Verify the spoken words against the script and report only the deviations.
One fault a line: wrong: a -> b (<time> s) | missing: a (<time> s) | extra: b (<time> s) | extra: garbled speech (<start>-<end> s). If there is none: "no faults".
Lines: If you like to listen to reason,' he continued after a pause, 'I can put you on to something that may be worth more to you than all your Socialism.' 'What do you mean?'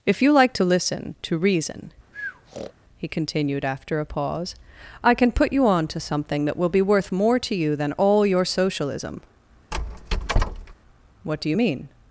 wrong: may -> will (6.6 s)